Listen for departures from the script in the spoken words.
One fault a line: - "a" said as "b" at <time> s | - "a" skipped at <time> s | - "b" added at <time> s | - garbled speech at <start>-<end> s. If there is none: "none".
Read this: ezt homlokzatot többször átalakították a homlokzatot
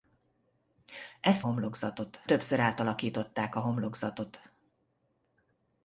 none